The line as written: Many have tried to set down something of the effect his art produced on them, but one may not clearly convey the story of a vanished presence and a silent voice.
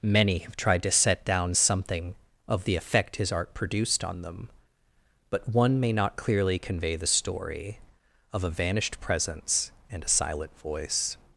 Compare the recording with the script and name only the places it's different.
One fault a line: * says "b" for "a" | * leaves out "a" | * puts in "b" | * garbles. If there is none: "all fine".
all fine